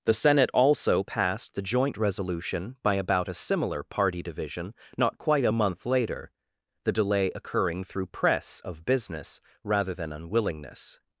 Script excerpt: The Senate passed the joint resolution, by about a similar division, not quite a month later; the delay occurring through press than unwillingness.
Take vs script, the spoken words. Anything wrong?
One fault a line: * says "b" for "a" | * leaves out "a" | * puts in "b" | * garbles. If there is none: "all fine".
* puts in "also"
* puts in "party"
* puts in "of business rather"